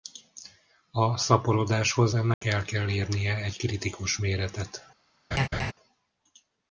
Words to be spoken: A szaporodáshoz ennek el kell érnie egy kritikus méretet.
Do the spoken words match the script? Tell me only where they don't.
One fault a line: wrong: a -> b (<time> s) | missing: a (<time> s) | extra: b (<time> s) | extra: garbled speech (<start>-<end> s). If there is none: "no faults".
no faults